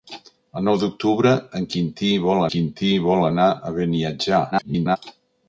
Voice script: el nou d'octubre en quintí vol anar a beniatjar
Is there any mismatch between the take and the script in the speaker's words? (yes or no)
yes